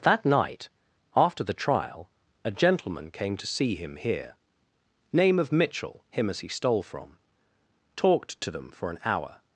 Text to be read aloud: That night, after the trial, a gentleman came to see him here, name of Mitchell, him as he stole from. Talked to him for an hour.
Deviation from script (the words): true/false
true